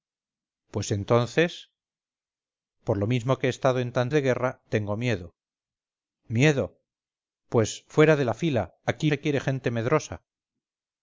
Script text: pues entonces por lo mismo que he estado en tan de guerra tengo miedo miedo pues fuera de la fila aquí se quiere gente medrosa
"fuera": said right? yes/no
yes